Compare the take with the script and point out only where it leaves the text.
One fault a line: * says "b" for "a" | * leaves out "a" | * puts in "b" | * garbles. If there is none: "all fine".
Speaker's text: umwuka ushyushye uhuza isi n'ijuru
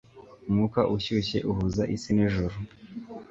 all fine